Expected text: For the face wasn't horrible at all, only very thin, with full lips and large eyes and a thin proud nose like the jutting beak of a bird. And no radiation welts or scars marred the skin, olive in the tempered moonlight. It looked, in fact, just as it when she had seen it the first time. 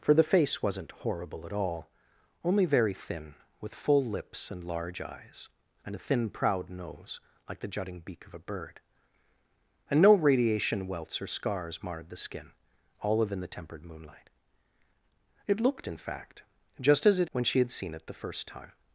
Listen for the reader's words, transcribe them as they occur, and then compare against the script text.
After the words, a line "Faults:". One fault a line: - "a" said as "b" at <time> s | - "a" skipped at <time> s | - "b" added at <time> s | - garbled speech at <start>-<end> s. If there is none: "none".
For the face wasn't horrible at all, only very thin, with full lips and large eyes and a thin proud nose like the jutting beak of a bird. And no radiation welts or scars marred the skin, olive in the tempered moonlight. It looked, in fact, just as it when she had seen it the first time.
Faults:
none